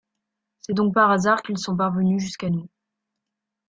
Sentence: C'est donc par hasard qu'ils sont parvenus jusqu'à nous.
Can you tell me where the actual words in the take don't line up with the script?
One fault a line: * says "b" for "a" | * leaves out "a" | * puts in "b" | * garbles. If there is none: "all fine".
all fine